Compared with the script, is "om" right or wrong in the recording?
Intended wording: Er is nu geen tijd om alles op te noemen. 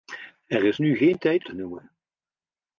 wrong